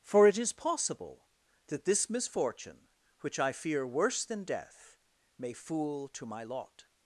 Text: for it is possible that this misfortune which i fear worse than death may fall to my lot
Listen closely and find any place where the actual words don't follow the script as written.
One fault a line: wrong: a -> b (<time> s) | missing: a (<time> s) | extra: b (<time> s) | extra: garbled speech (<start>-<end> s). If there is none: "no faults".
wrong: fall -> fool (5.5 s)